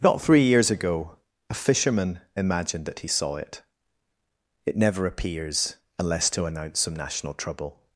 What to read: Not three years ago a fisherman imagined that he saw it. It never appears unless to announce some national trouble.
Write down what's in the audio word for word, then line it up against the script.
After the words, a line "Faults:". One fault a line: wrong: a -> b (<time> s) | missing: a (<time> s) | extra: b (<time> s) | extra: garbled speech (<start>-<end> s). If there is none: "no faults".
Not three years ago a fisherman imagined that he saw it. It never appears unless to announce some national trouble.
Faults:
no faults